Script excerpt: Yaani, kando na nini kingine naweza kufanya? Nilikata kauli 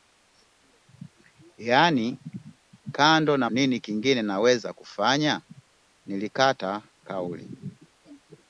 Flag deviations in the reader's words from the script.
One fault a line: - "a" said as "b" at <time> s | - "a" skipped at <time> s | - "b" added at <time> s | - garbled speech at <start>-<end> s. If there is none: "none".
none